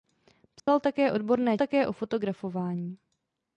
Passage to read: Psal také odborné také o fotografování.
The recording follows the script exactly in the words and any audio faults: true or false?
false